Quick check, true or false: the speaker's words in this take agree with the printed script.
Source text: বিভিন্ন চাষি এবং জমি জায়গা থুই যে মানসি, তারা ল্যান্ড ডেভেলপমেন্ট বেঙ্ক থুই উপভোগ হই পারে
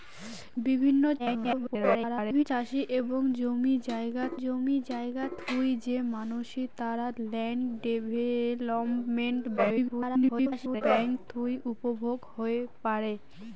false